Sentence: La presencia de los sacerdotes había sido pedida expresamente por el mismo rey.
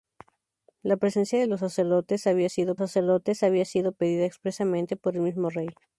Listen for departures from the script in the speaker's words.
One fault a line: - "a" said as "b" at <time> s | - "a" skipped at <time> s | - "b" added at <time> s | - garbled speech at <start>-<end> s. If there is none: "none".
- "sacerdotes había sido" added at 2.8 s